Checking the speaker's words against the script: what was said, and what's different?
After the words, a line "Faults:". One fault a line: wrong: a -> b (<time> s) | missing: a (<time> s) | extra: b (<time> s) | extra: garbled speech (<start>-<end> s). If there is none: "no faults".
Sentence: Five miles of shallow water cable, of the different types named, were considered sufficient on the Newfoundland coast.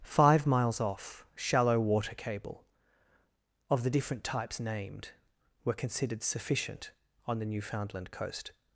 Five miles off shallow water cable, of the different types named, were considered sufficient on the Newfoundland coast.
Faults:
wrong: of -> off (0.8 s)